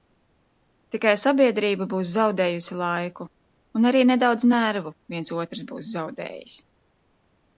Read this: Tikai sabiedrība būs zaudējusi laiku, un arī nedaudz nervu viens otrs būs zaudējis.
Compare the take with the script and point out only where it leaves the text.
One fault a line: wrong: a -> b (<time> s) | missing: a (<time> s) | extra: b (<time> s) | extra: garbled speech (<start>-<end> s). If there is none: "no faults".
no faults